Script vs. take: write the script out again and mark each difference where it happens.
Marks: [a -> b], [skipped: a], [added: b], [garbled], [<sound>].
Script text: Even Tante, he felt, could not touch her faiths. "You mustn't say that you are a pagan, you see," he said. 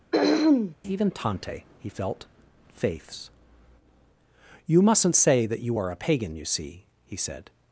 [throat clearing] Even Tante, he felt, [skipped: could not touch her] faiths. "You mustn't say that you are a pagan, you see," he said.